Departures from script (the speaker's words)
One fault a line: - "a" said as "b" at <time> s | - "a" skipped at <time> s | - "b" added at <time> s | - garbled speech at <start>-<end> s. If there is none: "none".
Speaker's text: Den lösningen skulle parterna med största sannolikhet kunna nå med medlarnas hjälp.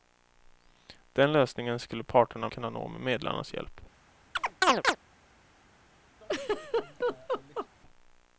- "med största sannolikhet" skipped at 2.5 s